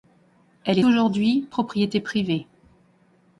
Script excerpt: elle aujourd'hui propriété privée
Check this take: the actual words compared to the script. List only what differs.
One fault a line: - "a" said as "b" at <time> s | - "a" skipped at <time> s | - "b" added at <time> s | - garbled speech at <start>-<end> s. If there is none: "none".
none